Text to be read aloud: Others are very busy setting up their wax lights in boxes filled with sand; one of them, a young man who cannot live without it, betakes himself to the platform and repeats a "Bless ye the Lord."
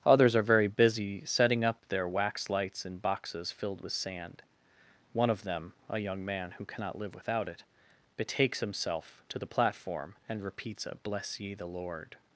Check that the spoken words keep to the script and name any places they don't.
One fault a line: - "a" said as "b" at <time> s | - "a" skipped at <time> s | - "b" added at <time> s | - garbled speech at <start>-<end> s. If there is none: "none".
none